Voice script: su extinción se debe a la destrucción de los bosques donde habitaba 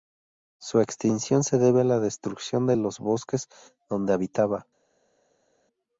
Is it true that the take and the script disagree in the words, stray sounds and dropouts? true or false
false